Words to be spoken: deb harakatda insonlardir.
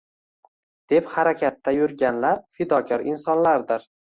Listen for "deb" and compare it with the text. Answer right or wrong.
right